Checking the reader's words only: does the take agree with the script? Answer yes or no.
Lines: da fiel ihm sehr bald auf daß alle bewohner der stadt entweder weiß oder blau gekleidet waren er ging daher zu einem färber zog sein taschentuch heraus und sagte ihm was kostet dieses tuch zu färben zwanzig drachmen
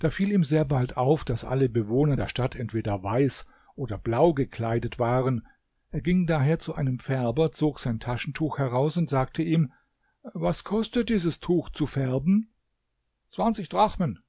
yes